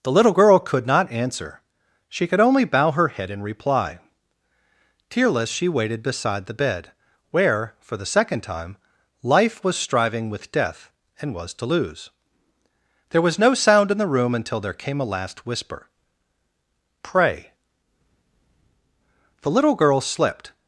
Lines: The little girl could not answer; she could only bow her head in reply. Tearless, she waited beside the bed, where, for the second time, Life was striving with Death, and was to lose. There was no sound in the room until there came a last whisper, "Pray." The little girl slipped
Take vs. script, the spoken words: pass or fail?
pass